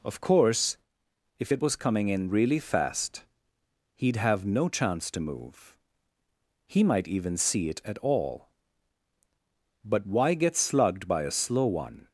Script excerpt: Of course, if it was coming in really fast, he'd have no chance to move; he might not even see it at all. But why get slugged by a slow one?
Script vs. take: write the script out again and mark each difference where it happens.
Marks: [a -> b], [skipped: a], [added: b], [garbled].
Of course, if it was coming in really fast, he'd have no chance to move; he might [skipped: not] even see it at all. But why get slugged by a slow one?